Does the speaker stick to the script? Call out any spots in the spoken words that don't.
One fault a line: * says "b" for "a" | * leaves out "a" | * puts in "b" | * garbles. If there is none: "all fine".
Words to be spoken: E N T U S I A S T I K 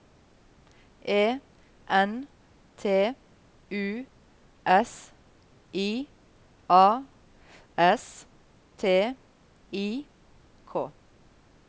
all fine